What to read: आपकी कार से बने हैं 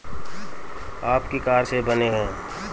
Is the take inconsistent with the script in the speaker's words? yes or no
no